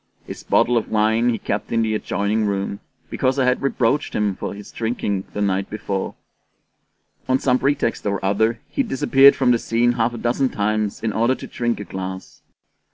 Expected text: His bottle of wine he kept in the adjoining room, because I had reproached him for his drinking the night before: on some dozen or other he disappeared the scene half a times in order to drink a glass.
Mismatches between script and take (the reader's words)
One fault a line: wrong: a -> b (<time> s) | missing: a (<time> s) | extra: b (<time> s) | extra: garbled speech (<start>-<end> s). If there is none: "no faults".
wrong: dozen -> pretext (7.6 s)
extra: from (9.4 s)
extra: dozen (10.2 s)